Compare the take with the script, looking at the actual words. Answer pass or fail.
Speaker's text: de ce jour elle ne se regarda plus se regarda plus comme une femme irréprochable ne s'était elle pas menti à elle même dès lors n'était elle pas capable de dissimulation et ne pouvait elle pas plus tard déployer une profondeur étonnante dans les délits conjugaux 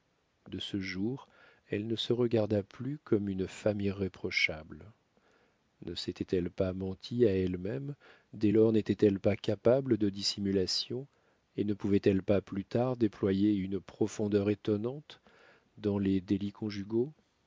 fail